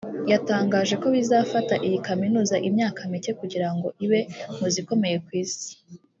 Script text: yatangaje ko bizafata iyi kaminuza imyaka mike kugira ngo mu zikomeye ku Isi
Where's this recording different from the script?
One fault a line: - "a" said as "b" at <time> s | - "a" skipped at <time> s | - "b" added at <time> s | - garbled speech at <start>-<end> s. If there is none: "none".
- "ibe" added at 4.0 s